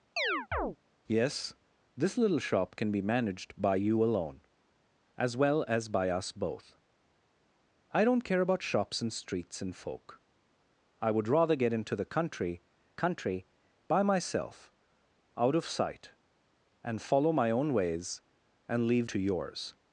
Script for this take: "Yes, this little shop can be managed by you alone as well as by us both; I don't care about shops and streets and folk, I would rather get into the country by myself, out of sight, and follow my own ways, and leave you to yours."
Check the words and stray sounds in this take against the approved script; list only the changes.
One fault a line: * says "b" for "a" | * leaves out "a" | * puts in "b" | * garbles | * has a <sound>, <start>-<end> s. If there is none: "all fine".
* has a chirp, 0.2-0.8 s
* puts in "country"
* leaves out "you"